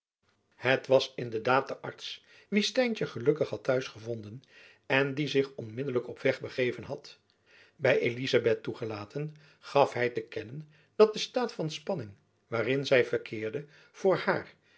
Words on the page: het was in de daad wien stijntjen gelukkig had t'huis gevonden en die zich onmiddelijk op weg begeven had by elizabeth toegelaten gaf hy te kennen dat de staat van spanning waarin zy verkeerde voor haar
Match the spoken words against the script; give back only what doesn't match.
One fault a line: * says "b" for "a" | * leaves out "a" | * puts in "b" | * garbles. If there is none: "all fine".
* puts in "de arts"